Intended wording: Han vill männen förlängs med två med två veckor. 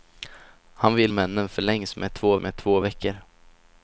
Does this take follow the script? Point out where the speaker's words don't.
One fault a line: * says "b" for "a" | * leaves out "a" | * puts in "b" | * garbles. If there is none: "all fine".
all fine